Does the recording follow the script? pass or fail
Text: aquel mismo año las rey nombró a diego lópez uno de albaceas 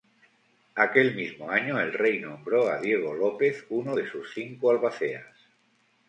fail